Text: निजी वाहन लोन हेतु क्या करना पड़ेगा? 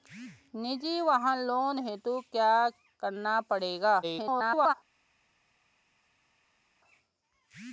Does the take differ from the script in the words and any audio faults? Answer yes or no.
yes